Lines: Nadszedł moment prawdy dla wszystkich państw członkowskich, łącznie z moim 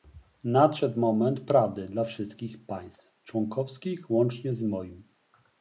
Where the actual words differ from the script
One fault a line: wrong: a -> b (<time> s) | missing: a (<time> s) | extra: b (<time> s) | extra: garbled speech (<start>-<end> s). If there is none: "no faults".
no faults